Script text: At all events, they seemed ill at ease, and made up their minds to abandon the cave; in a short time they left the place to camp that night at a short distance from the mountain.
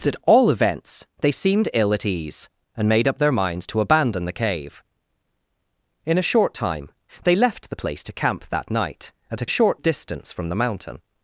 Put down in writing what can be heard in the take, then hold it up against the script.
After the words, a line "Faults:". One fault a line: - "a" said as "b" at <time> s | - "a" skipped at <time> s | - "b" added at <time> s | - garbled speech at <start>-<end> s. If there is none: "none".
At all events, they seemed ill at ease, and made up their minds to abandon the cave; in a short time they left the place to camp that night at a short distance from the mountain.
Faults:
none